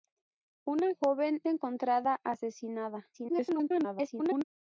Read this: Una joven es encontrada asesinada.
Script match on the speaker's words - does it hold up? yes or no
no